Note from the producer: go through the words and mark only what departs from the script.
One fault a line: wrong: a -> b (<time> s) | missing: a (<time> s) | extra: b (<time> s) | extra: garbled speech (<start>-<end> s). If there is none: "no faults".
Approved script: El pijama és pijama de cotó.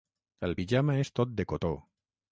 wrong: pijama -> tot (1.2 s)